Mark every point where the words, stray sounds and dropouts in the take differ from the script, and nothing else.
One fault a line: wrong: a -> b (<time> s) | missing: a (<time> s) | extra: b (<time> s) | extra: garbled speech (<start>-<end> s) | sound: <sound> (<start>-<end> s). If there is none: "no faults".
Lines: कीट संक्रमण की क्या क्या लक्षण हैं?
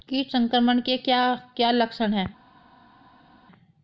wrong: की -> के (0.8 s)